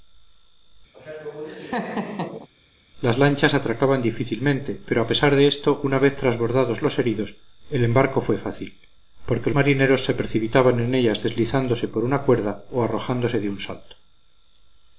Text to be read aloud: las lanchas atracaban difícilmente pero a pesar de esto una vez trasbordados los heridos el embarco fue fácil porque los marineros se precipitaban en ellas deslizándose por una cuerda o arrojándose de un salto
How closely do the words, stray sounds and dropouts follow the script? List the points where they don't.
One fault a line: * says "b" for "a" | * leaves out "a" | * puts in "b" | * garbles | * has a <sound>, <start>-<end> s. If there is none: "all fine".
* has a laugh, 0.9-2.5 s
* leaves out "los"